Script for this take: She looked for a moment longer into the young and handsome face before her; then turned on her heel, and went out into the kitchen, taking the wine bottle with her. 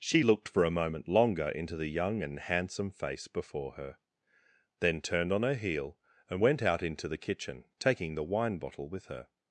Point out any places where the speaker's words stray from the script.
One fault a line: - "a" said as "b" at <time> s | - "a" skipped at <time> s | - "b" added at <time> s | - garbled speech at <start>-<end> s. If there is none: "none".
none